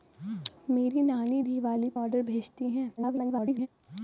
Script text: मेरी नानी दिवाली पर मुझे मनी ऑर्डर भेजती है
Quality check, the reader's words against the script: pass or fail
fail